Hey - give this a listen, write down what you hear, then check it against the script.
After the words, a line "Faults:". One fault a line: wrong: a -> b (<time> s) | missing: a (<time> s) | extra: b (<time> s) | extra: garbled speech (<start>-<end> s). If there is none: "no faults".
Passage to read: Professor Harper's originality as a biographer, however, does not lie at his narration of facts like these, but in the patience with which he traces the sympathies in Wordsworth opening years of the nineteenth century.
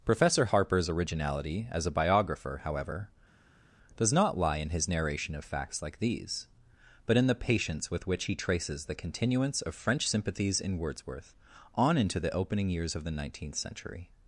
Professor Harper's originality as a biographer, however, does not lie in his narration of facts like these, but in the patience with which he traces the continuance of French sympathies in Wordsworth on into the opening years of the nineteenth century.
Faults:
wrong: at -> in (4.6 s)
extra: continuance of French (8.9 s)
extra: on into the (11.7 s)